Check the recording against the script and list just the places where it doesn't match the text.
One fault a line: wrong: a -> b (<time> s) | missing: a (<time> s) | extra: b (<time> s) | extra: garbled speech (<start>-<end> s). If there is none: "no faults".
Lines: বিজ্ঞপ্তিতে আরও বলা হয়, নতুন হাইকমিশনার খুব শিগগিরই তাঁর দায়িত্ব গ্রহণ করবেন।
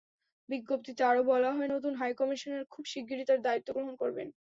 no faults